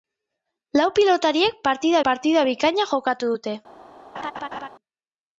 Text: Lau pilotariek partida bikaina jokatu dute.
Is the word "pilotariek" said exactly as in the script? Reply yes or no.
yes